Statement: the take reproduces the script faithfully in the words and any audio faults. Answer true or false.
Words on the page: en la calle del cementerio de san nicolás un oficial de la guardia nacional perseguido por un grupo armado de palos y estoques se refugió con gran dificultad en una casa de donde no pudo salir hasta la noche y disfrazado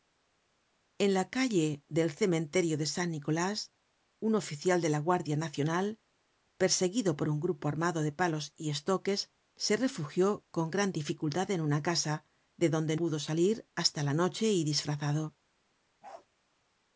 false